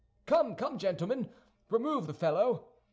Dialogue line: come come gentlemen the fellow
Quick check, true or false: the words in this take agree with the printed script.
false